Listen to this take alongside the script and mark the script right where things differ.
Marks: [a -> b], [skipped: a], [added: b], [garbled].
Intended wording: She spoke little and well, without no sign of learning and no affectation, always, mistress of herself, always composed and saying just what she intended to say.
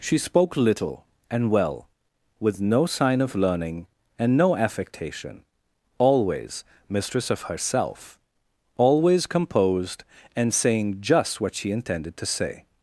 She spoke little and well, [without -> with] no sign of learning and no affectation, always, mistress of herself, always composed and saying just what she intended to say.